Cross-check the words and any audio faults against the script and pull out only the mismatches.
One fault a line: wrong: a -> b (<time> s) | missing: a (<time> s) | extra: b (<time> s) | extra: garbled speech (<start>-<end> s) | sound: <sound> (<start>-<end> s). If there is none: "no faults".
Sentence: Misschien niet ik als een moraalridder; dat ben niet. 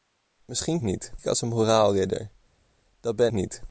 no faults